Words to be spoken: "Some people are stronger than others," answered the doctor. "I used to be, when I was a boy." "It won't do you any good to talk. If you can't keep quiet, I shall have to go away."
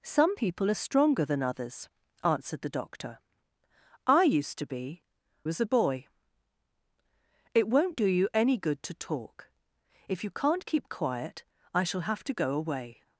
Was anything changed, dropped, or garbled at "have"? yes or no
no